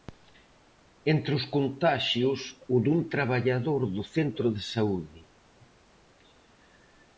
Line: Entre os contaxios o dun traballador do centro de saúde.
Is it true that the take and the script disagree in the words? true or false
false